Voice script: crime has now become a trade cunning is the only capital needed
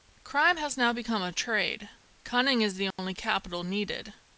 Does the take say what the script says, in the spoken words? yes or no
yes